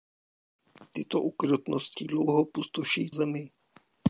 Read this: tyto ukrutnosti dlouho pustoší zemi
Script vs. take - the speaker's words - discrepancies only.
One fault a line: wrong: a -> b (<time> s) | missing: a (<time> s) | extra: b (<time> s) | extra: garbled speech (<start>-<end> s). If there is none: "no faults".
no faults